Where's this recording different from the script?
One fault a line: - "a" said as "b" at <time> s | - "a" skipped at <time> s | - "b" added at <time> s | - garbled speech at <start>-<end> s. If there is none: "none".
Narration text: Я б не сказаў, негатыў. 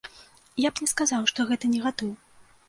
- "што гэта" added at 1.3 s